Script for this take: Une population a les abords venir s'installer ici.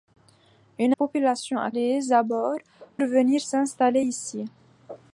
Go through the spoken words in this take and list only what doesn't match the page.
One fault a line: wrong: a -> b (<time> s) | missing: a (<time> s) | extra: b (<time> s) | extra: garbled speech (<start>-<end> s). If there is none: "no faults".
no faults